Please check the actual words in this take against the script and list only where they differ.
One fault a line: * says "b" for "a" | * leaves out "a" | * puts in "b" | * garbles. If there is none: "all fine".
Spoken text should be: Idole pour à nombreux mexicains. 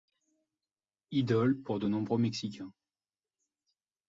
* says "de" for "à"